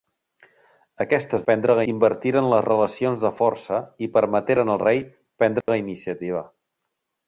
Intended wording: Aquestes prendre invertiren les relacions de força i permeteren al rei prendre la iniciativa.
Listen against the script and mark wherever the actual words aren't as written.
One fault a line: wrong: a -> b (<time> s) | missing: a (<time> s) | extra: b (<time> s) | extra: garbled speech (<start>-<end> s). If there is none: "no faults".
no faults